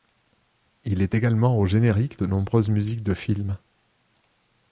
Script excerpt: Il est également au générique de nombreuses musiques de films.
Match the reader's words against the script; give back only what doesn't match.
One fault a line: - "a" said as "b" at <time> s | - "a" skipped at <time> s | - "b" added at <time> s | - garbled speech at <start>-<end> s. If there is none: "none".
none